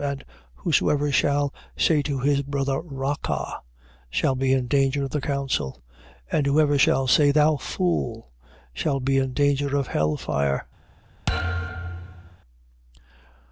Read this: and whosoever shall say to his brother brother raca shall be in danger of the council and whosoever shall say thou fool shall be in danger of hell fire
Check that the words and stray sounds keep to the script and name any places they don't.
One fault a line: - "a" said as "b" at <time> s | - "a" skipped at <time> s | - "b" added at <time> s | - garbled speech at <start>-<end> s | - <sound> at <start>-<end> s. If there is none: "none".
- "brother" skipped at 2.8 s
- thud at 11.3-12.4 s